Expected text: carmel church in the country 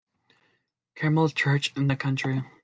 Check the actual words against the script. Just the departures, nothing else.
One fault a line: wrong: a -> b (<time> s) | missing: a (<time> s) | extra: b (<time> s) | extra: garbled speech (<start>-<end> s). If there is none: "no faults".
no faults